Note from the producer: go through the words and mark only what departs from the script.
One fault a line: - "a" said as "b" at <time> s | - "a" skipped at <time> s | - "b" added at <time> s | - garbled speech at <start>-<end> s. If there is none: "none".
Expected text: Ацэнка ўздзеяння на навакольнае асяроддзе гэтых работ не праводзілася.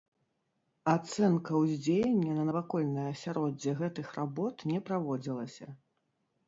none